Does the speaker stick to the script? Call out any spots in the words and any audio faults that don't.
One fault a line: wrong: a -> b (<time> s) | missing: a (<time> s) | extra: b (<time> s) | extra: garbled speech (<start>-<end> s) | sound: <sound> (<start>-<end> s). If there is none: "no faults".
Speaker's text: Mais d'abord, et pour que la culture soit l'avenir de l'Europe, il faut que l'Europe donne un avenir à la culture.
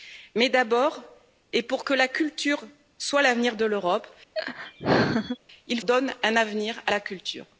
sound: laugh (4.3-5.4 s)
missing: faut que l'Europe (5.8 s)